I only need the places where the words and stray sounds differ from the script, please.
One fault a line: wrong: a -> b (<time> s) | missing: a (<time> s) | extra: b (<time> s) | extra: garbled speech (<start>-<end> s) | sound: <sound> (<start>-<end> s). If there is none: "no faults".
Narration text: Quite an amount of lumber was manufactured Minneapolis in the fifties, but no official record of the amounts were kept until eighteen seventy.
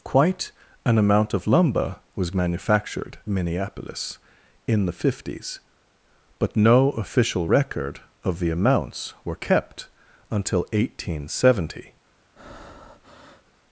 sound: breath (12.4-13.5 s)